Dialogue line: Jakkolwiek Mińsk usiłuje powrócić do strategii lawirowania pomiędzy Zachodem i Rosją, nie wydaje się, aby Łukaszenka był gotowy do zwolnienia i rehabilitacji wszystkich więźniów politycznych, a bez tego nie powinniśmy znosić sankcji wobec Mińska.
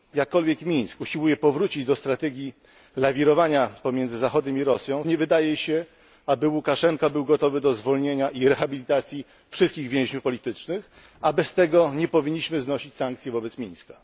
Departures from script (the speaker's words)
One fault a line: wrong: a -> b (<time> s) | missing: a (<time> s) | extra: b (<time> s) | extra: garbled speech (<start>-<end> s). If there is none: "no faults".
no faults